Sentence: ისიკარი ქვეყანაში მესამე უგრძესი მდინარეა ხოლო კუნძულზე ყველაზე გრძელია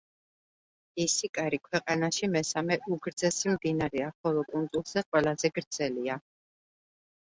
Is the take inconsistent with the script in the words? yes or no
no